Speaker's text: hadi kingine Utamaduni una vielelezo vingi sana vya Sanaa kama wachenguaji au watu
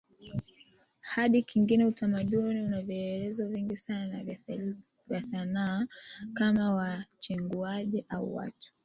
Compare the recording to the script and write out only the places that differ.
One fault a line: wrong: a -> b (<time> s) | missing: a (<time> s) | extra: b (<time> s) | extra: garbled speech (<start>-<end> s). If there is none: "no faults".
no faults